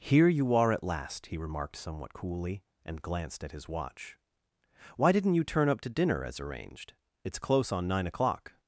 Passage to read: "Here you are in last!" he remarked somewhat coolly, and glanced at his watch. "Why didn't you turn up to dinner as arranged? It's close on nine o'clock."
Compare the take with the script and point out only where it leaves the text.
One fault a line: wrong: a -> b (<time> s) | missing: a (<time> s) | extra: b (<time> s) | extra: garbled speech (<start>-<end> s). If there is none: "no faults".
wrong: in -> at (0.7 s)